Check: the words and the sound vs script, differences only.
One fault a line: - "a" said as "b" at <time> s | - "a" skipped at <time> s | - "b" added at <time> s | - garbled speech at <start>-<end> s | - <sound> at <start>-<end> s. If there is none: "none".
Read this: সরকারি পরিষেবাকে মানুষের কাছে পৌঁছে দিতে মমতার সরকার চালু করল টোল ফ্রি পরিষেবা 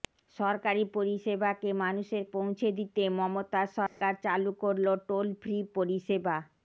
- "কাছে" skipped at 2.2 s
- dropout at 3.9-4.0 s